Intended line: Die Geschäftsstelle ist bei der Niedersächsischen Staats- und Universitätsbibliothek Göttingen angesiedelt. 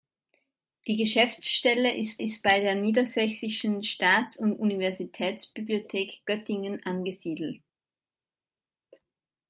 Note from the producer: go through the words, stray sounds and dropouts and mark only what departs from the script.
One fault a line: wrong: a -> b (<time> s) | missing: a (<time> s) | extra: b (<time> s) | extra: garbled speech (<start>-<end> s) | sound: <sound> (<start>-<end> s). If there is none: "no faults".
extra: ist (2.2 s)